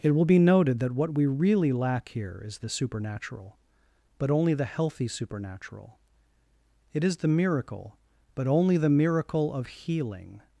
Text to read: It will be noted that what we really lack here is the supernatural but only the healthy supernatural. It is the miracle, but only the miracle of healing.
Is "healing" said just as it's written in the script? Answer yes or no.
yes